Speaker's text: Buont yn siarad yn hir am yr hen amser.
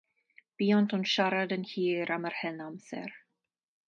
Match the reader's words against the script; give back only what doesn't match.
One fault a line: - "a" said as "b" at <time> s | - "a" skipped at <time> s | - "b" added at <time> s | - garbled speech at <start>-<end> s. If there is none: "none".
none